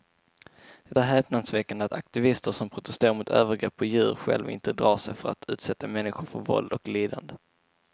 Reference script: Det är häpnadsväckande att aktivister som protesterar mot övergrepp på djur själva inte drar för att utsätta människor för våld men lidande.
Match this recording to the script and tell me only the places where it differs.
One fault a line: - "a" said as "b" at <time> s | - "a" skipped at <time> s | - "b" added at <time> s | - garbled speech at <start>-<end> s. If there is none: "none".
- "sig" added at 5.0 s
- "men" said as "och" at 6.7 s